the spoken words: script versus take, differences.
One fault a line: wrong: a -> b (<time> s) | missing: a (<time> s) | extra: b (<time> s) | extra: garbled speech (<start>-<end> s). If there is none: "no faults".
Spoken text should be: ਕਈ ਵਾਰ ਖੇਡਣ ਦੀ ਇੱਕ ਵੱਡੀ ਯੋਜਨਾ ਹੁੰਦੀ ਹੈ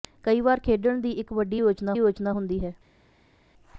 extra: ਯੋਜਨਾ (1.9 s)